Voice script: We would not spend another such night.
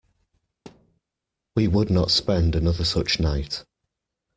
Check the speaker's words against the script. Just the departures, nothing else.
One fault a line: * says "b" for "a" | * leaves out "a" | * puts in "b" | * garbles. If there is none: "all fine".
all fine